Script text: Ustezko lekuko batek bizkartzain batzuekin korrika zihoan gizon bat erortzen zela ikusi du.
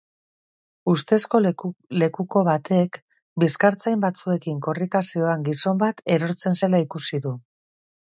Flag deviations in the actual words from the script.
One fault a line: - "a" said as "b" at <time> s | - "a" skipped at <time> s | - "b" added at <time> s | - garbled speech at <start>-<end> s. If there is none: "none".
none